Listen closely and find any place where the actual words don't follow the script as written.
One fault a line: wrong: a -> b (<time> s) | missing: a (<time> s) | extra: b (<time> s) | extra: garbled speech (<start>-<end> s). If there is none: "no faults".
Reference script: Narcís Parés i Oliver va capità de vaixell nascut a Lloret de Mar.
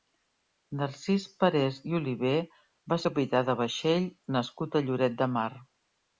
no faults